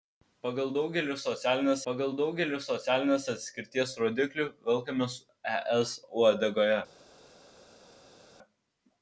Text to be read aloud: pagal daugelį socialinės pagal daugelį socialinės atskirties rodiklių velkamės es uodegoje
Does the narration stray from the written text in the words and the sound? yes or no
no